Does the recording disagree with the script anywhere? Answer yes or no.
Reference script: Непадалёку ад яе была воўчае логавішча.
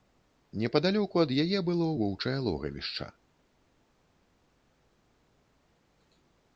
yes